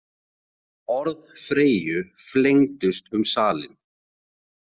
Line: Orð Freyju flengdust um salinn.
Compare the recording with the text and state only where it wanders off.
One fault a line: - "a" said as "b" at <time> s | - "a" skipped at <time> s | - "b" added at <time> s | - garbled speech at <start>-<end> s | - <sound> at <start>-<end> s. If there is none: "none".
none